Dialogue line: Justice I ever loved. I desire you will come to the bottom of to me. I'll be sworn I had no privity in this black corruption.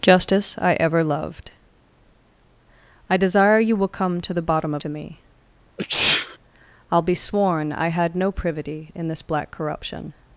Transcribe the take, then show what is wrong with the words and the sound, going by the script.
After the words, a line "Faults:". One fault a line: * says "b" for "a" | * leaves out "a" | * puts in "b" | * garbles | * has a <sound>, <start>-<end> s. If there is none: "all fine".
Justice I ever loved. I desire you will come to the bottom of to me. I'll be sworn I had no privity in this black corruption.
Faults:
* has a sneeze, 5.8-6.4 s